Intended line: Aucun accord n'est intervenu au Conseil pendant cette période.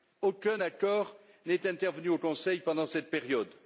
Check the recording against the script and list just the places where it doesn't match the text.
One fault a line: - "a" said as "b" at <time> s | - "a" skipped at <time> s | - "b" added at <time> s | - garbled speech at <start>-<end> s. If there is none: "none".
none